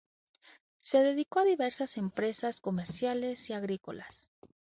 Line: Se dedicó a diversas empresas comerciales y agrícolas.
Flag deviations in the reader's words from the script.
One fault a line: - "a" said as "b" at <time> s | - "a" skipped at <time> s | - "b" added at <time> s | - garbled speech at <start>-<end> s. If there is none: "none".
none